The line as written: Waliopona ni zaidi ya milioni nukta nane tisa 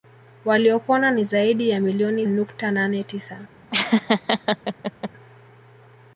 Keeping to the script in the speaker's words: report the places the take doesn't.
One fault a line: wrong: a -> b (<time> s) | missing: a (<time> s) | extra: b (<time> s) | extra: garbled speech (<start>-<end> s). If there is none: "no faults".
no faults